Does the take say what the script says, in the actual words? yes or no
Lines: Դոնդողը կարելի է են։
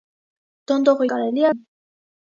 yes